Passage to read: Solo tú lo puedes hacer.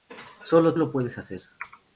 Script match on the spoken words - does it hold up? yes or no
no